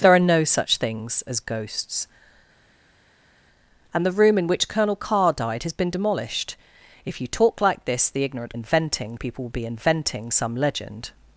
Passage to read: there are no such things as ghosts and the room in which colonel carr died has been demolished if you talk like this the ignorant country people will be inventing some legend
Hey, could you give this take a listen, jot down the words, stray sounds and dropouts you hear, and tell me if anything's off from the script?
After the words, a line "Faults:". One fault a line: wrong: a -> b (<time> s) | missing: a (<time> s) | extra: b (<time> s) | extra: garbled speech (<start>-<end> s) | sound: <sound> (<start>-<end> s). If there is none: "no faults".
there are no such things as ghosts and the room in which colonel carr died has been demolished if you talk like this the ignorant inventing people will be inventing some legend
Faults:
wrong: country -> inventing (8.5 s)